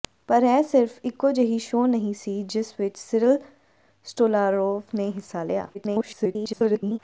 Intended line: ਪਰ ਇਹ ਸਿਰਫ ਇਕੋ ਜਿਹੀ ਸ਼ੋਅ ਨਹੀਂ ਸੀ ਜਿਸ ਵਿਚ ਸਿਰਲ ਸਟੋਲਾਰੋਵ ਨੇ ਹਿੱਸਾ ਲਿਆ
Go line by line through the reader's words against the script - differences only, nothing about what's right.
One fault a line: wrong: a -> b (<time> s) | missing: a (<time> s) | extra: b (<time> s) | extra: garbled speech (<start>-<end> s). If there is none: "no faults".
extra: garbled speech (5.7-7.0 s)